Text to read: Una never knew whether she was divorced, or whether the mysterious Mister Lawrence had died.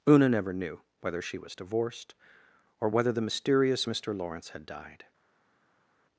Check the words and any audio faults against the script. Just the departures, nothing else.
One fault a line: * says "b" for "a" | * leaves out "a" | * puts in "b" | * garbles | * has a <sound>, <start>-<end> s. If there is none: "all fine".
all fine